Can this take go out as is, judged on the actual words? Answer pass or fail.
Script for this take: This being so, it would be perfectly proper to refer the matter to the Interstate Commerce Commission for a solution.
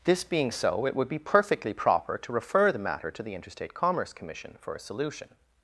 pass